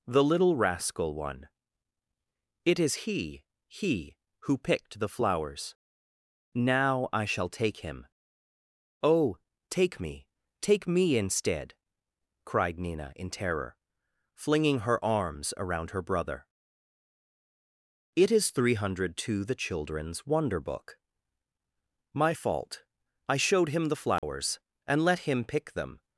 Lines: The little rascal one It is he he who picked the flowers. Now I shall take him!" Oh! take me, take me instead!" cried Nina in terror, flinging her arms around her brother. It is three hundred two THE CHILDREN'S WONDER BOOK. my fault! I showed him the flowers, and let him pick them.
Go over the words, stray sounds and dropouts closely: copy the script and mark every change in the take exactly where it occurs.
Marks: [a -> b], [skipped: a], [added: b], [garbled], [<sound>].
The little rascal one It is he he who picked the flowers. Now I shall take him!" Oh! take me, take me instead!" cried Nina in terror, flinging her arms around her brother. It is three hundred two THE CHILDREN'S WONDER BOOK. my fault! I showed him the flowers, [dropout] and let him pick them.